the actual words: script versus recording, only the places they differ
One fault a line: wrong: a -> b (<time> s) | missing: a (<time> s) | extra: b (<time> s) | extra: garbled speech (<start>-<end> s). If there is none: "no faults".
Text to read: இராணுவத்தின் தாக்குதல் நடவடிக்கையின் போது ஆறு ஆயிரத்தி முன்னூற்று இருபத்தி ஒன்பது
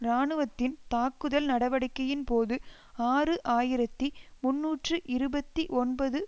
no faults